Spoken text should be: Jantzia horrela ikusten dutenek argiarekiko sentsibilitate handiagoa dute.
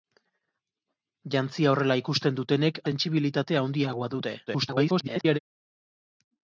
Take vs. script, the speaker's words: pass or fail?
fail